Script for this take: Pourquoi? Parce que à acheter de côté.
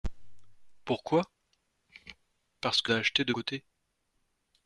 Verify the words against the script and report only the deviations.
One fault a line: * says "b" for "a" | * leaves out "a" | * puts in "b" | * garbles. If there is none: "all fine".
all fine